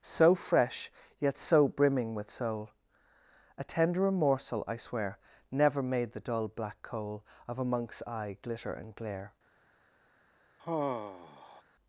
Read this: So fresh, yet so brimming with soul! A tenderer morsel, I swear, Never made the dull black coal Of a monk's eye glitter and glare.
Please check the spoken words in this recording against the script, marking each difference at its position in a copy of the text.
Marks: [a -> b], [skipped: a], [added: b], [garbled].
So fresh, yet so brimming with soul! A tenderer morsel, I swear, Never made the dull black coal Of a monk's eye glitter and glare.